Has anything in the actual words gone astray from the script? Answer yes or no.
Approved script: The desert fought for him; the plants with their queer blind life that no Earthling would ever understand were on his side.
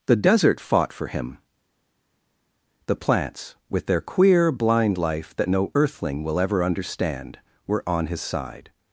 yes